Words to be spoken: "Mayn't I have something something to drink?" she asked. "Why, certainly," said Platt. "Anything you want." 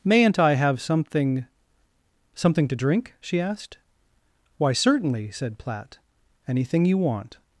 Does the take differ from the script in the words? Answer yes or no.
no